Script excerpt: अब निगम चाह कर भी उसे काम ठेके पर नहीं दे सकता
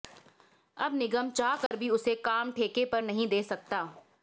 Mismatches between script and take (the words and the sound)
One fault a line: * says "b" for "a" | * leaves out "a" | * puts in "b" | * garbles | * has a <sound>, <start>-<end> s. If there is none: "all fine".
* has a dropout, 1.7-1.7 s